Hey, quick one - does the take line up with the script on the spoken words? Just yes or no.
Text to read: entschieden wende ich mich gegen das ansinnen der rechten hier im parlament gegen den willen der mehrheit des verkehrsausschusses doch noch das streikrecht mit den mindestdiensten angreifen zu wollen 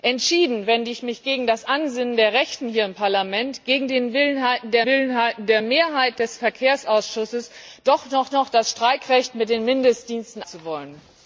no